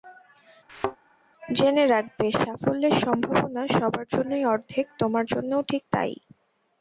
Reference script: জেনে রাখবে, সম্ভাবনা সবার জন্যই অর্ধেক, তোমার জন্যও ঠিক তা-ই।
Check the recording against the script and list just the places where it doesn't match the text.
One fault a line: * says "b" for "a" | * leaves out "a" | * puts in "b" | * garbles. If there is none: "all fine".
* puts in "সাফল্যের"